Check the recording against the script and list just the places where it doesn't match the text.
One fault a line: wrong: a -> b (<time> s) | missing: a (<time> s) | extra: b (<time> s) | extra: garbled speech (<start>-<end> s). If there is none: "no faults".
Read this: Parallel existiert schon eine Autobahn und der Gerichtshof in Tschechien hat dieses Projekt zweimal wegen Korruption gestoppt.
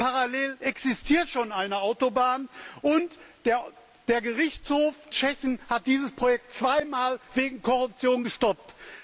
missing: in (5.0 s)